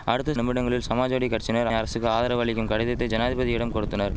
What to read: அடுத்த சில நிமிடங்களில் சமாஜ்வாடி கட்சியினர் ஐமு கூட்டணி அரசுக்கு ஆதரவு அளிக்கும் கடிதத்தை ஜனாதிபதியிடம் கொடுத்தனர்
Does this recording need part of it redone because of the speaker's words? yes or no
yes